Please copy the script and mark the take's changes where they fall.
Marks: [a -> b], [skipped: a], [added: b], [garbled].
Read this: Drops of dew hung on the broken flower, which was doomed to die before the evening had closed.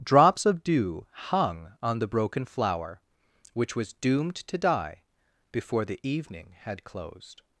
Drops of dew hung on the broken flower, which was doomed to die before the evening had closed.